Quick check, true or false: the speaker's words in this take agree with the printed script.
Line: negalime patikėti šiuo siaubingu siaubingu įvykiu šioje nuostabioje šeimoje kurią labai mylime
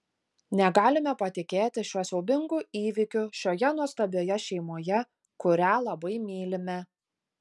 false